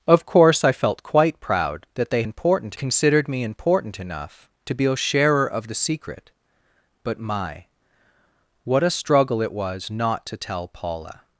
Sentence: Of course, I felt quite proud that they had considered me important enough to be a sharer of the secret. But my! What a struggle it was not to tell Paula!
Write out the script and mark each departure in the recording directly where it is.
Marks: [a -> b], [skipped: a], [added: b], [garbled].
Of course, I felt quite proud that they [had -> important] considered me important enough to be a sharer of the secret. But my! What a struggle it was not to tell Paula!